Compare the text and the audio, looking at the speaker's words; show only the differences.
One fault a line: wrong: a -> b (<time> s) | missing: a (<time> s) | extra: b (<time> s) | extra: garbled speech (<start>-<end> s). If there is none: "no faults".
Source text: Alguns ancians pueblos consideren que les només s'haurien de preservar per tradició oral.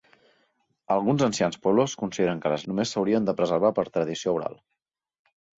no faults